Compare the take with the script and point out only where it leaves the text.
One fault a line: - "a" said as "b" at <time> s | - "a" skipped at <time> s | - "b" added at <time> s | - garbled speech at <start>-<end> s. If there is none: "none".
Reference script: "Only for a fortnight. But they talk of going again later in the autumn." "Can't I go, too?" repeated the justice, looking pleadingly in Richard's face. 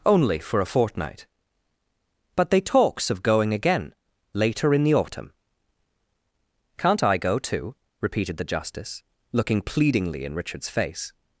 - "talk" said as "talks" at 2.6 s